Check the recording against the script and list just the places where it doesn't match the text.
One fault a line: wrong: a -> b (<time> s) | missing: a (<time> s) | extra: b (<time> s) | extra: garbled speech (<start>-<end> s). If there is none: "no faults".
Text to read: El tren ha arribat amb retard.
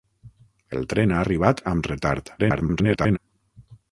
extra: garbled speech (2.4-3.2 s)